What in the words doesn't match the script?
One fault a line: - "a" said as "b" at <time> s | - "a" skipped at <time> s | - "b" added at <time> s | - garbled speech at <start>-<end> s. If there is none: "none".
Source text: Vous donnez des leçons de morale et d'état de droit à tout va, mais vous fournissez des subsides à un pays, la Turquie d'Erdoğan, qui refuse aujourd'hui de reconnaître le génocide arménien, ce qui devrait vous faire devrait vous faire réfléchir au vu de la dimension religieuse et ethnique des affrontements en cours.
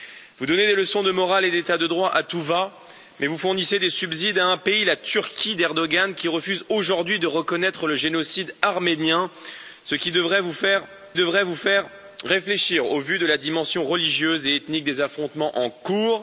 none